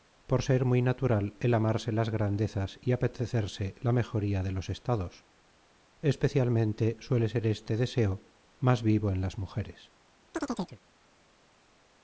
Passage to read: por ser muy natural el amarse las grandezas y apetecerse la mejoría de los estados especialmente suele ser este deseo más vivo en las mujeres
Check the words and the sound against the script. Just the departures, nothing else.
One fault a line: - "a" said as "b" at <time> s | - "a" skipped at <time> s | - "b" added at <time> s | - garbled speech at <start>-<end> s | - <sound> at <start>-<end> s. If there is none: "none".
- chirp at 10.3-10.8 s